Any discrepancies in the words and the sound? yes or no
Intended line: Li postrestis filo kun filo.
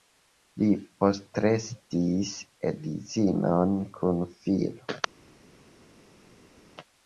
yes